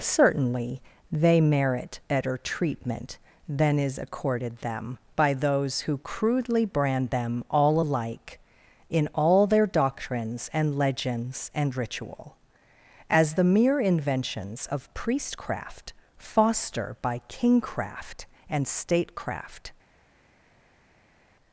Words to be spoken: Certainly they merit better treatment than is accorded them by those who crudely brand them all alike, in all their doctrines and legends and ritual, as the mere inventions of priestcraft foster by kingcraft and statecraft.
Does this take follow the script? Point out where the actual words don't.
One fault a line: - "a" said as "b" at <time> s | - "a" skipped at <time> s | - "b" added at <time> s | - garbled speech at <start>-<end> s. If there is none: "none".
none